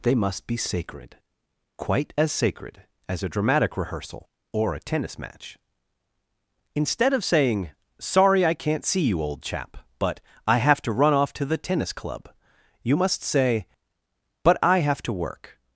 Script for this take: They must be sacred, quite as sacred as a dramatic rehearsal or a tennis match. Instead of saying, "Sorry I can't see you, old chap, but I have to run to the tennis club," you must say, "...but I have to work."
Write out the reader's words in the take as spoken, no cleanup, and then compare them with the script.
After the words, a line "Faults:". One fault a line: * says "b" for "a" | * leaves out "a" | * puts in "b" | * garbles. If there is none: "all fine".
They must be sacred, quite as sacred as a dramatic rehearsal or a tennis match. Instead of saying, "Sorry I can't see you, old chap, but I have to run off to the tennis club," you must say, "...but I have to work."
Faults:
* puts in "off"